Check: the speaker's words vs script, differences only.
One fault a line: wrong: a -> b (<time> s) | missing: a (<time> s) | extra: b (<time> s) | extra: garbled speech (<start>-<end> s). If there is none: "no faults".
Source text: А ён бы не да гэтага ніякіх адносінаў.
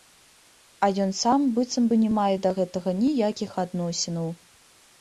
extra: сам быццам (1.2 s)
extra: мае (2.2 s)